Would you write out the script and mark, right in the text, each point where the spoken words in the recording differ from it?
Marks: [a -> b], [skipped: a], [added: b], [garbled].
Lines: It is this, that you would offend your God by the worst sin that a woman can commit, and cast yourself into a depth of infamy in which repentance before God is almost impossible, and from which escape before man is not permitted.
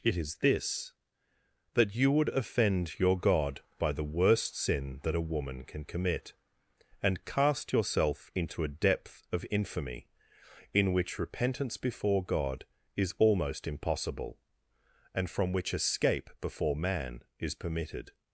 It is this, that you would offend your God by the worst sin that a woman can commit, and cast yourself into a depth of infamy in which repentance before God is almost impossible, and from which escape before man is [skipped: not] permitted.